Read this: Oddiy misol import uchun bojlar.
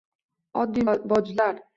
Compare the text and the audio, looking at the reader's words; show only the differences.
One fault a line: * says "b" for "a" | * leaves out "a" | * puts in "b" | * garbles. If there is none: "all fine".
* leaves out "misol import uchun"